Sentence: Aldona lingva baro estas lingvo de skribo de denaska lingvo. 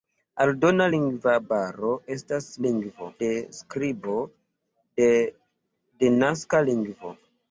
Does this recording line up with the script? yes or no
yes